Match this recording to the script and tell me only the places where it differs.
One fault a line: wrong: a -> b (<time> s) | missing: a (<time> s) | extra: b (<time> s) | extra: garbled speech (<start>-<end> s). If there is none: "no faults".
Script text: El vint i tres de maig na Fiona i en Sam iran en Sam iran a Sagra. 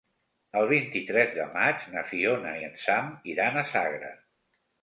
missing: en Sam iran (3.6 s)